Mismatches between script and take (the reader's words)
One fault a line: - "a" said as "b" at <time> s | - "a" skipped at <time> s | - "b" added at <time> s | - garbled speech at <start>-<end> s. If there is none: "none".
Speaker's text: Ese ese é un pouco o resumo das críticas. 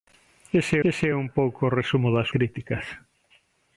none